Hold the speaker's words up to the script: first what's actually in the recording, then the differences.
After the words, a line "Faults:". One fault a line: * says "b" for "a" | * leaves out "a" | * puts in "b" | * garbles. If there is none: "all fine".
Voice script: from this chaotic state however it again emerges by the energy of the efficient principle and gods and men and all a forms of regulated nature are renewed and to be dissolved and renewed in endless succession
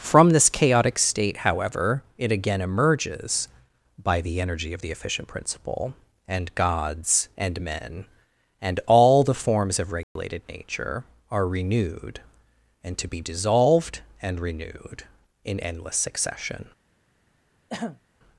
from this chaotic state however it again emerges by the energy of the efficient principle and gods and men and all the forms of regulated nature are renewed and to be dissolved and renewed in endless succession
Faults:
* says "the" for "a"